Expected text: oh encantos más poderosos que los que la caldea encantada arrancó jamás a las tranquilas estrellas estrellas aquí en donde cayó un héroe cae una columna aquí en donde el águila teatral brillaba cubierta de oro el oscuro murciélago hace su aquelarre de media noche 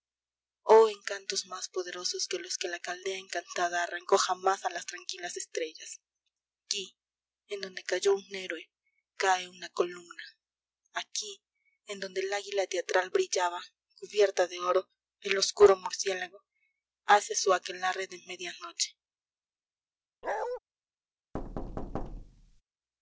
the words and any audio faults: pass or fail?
fail